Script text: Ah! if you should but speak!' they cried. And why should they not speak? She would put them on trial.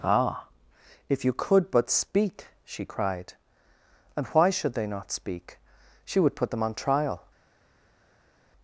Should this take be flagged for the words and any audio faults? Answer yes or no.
yes